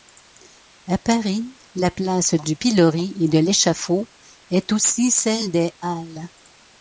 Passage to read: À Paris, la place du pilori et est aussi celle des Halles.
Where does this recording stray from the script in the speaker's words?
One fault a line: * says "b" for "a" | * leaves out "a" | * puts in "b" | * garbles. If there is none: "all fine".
* puts in "de l'échafaud"